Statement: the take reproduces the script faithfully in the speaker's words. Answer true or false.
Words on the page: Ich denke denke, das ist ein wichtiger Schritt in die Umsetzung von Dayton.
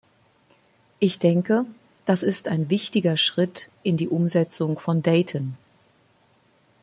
false